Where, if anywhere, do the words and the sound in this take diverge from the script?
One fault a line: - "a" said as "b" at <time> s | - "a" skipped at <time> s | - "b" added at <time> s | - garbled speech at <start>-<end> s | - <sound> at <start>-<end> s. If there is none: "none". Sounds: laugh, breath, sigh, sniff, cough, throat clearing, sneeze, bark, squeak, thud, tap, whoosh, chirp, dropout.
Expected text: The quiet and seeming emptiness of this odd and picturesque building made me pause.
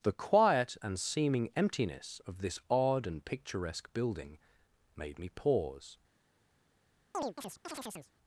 - chirp at 7.1-8.1 s